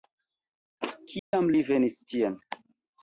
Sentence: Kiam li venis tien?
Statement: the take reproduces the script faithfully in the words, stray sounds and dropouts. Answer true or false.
false